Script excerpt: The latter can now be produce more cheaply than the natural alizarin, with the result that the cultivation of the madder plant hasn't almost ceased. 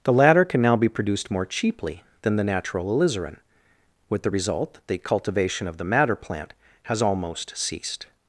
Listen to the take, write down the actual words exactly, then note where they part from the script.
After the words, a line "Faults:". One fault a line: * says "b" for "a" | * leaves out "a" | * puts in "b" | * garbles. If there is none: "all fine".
The latter can now be produced more cheaply than the natural alizarin, with the result that the cultivation of the madder plant has almost ceased.
Faults:
* says "produced" for "produce"
* says "has" for "hasn't"